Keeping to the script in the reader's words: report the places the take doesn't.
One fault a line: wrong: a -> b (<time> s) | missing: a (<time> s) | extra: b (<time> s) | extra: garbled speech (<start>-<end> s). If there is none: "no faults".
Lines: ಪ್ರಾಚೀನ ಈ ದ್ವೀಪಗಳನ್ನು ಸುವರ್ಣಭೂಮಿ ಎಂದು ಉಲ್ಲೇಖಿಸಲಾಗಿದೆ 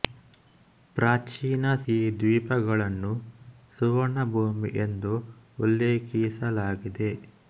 no faults